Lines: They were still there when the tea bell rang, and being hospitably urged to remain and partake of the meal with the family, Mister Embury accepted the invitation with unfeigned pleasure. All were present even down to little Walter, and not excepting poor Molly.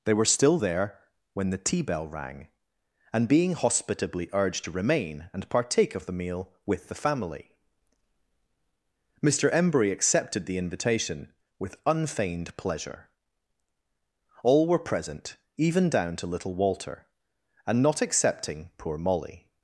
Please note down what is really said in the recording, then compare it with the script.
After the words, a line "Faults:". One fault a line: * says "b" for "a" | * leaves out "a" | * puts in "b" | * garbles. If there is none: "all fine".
They were still there when the tea bell rang, and being hospitably urged to remain and partake of the meal with the family, Mister Embury accepted the invitation with unfeigned pleasure. All were present even down to little Walter, and not excepting poor Molly.
Faults:
all fine